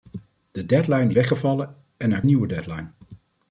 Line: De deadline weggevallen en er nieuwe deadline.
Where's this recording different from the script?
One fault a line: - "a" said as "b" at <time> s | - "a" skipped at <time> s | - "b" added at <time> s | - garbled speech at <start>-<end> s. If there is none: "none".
none